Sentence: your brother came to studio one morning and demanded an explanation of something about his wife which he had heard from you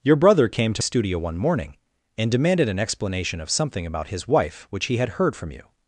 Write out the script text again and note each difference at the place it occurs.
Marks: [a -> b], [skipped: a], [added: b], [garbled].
your brother came to studio one morning and demanded an explanation of something about his wife which he had heard from you